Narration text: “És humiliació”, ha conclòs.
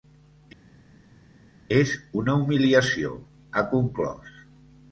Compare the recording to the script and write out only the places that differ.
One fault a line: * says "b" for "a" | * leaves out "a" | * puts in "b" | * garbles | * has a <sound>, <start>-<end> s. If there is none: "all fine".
* puts in "una"